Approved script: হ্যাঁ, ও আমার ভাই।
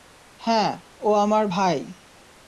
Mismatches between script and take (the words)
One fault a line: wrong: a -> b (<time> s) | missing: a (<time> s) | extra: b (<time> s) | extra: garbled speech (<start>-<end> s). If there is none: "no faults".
no faults